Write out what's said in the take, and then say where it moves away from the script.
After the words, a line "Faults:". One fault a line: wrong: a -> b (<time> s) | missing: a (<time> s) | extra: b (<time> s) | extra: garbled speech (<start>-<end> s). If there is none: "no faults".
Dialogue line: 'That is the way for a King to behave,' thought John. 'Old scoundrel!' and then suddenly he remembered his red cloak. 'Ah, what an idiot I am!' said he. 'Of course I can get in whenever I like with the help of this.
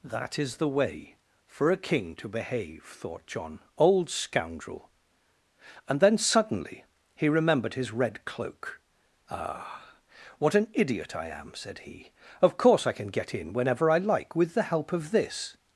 'That is the way for a King to behave,' thought John. 'Old scoundrel!' and then suddenly he remembered his red cloak. 'Ah, what an idiot I am!' said he. 'Of course I can get in whenever I like with the help of this.
Faults:
no faults